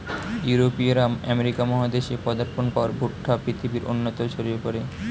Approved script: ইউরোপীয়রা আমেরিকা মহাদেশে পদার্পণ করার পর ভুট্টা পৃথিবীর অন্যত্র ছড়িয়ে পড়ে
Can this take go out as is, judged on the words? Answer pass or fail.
fail